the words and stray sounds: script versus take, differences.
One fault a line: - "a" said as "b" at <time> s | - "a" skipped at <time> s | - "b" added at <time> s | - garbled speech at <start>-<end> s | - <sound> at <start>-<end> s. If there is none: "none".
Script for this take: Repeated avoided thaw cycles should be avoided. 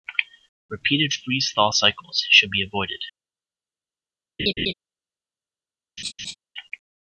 - "avoided" said as "freeze" at 1.1 s
- laugh at 4.4-4.7 s
- laugh at 6.0-6.3 s